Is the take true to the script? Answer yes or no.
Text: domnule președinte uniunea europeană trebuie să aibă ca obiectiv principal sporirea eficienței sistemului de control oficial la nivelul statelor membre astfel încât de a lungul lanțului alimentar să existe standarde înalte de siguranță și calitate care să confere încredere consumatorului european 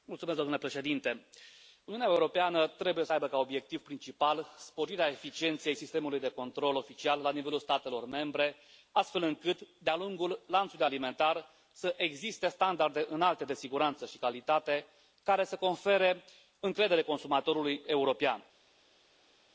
yes